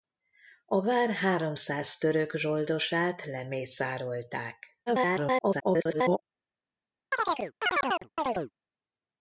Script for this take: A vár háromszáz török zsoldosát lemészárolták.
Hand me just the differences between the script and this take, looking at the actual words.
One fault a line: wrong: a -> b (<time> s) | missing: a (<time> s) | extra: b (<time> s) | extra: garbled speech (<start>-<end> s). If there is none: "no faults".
extra: garbled speech (4.9-6.2 s)